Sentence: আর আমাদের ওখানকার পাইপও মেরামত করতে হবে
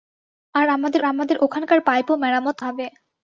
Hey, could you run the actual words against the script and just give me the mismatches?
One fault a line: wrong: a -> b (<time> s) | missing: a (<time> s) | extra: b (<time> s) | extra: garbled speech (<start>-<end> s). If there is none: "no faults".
extra: আমাদের (1.0 s)
missing: করতে (2.6 s)